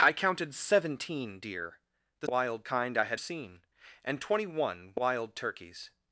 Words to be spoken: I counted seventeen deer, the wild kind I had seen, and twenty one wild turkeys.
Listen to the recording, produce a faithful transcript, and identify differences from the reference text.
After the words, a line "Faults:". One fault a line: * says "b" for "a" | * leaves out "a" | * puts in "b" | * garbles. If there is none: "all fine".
I counted seventeen deer, the wild kind I had seen, and twenty one wild turkeys.
Faults:
all fine